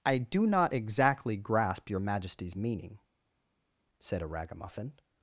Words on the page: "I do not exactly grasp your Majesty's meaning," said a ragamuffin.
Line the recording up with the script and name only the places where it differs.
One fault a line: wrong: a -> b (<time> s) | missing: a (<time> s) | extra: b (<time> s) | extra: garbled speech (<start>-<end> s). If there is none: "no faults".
no faults